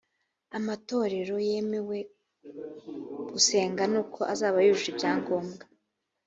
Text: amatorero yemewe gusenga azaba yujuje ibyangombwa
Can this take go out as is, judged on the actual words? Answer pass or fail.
fail